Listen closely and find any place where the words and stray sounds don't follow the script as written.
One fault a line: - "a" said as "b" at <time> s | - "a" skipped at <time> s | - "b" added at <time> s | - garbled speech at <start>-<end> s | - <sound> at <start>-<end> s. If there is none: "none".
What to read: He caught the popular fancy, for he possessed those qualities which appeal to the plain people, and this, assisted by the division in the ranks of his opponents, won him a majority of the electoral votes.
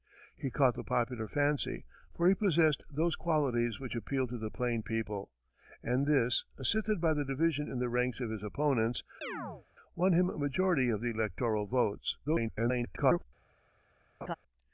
- chirp at 9.2-9.7 s
- garbled speech at 12.2-13.3 s
- laugh at 14.2-14.4 s